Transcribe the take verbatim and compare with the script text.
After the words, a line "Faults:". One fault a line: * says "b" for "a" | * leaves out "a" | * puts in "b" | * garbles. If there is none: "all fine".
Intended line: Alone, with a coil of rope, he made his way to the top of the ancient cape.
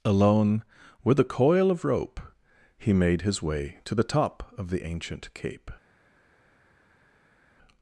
Alone, with a coil of rope, he made his way to the top of the ancient cape.
Faults:
all fine